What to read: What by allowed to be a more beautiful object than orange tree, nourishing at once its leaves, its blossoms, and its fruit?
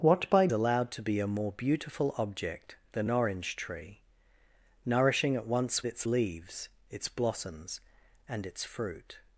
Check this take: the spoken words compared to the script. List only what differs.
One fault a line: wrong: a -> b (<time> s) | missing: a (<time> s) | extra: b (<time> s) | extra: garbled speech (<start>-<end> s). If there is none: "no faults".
no faults